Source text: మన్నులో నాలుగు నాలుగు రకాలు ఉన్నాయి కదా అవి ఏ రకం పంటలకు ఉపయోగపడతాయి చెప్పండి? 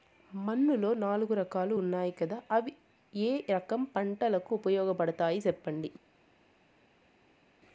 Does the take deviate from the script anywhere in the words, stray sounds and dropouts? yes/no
yes